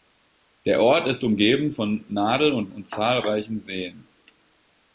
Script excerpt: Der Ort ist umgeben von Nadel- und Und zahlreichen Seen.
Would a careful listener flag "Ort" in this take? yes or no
no